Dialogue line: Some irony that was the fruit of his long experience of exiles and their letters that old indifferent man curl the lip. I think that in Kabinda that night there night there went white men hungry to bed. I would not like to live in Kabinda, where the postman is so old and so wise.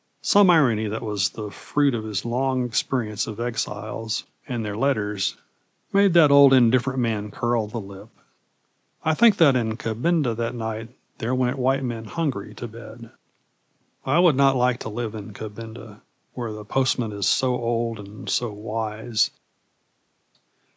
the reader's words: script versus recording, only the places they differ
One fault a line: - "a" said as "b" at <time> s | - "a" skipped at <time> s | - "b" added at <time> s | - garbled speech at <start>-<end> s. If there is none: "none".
- "made" added at 5.9 s
- "night there" skipped at 11.3 s